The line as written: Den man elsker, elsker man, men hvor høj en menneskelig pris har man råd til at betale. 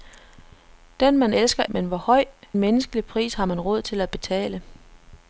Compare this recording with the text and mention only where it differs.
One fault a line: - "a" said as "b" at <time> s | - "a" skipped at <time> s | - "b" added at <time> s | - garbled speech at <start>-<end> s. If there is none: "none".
- "elsker man" skipped at 1.6 s
- "en" skipped at 2.2 s